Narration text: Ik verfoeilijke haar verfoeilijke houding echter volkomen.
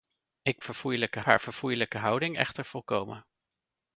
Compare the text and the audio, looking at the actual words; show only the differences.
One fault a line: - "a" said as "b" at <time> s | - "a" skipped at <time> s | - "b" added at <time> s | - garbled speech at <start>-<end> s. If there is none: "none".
none